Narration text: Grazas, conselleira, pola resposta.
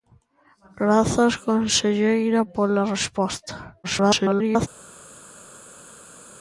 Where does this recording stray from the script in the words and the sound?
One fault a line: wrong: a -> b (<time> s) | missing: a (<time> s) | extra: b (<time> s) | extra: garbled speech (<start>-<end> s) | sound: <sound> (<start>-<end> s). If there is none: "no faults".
extra: garbled speech (3.8-4.7 s)